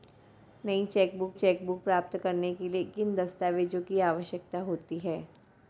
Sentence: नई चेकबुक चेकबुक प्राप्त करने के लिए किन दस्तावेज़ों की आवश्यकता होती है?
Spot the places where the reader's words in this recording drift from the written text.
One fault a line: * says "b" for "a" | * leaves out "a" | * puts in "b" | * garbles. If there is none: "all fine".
all fine